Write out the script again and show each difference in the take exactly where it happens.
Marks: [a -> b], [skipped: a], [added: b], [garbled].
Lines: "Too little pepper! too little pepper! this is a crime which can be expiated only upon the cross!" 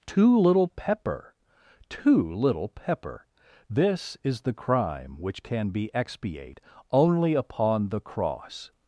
"Too little pepper! too little pepper! this is [a -> the] crime which can be [expiated -> expiate] only upon the cross!"